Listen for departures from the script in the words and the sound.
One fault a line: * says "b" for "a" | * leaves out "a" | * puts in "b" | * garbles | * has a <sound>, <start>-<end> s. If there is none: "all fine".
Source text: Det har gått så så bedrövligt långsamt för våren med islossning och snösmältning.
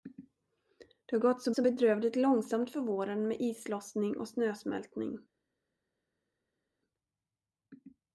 all fine